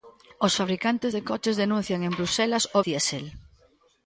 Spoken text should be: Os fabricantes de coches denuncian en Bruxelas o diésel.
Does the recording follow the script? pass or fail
pass